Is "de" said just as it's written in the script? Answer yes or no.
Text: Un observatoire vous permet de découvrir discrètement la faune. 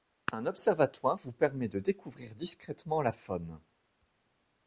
yes